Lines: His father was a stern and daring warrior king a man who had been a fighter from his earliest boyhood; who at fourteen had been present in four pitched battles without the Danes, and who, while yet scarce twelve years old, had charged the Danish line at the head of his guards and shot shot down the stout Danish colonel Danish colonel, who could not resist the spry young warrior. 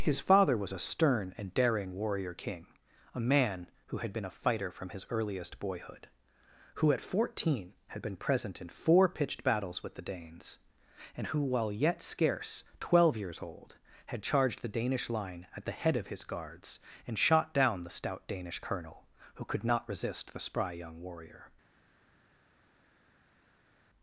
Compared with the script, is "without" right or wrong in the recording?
wrong